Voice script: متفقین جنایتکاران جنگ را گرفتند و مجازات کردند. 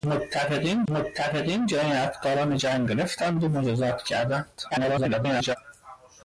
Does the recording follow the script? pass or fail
fail